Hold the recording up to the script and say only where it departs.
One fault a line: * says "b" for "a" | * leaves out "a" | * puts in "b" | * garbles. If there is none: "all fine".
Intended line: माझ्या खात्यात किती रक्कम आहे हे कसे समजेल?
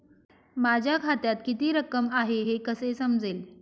all fine